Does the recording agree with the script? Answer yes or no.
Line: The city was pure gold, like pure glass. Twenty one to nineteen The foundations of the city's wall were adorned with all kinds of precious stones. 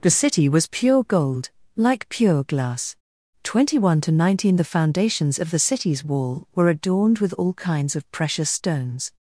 yes